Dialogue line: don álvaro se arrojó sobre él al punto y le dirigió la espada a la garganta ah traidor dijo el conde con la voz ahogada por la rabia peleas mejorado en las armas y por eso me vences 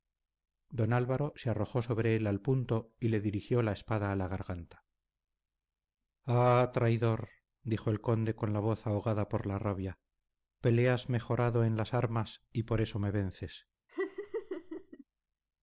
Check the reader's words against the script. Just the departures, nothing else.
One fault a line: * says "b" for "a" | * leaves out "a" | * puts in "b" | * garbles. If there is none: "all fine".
all fine